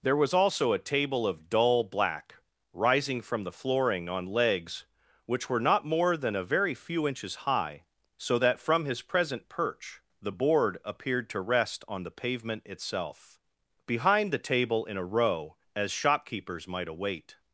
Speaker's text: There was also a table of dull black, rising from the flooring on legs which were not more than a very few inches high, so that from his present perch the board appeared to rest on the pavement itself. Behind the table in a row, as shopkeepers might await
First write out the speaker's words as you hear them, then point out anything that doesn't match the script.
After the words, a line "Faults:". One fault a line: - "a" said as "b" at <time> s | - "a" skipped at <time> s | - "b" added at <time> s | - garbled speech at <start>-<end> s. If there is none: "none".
There was also a table of dull black, rising from the flooring on legs which were not more than a very few inches high, so that from his present perch the board appeared to rest on the pavement itself. Behind the table in a row, as shopkeepers might await
Faults:
none